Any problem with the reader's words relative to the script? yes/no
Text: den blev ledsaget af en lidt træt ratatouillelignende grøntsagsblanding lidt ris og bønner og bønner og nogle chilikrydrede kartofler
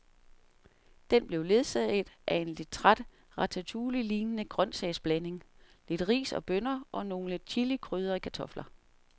yes